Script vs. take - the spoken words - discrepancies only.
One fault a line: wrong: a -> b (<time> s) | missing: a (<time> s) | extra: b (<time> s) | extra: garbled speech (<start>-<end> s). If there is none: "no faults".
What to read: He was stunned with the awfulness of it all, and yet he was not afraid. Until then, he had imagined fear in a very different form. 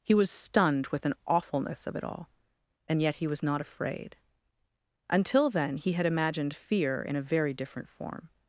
wrong: the -> an (1.1 s)